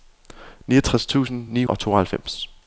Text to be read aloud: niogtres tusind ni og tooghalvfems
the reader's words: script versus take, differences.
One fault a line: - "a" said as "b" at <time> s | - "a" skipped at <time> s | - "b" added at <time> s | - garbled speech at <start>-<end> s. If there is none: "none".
none